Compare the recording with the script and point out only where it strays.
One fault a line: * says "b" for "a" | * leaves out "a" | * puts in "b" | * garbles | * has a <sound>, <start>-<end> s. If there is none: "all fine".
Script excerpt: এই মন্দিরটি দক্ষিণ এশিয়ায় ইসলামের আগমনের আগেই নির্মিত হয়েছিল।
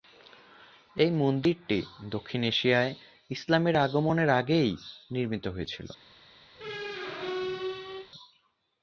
* has a squeak, 6.5-8.1 s